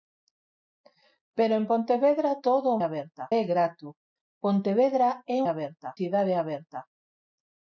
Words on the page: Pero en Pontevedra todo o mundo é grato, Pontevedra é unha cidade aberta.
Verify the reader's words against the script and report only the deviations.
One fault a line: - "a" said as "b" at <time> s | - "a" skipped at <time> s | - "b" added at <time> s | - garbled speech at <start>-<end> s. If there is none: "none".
- "mundo" said as "aberta" at 2.9 s
- "unha" said as "aberta" at 5.5 s